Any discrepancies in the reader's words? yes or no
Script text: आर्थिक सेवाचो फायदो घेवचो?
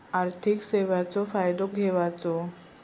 no